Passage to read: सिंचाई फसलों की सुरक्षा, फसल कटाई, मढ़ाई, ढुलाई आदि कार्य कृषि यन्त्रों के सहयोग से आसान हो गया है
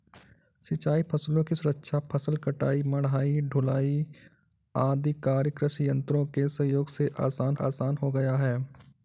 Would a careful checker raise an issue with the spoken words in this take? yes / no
yes